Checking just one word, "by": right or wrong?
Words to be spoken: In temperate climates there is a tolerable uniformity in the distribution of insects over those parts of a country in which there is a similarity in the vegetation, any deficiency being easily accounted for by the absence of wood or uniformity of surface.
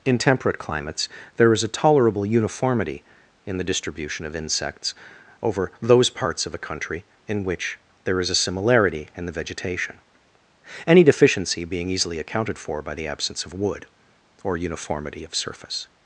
right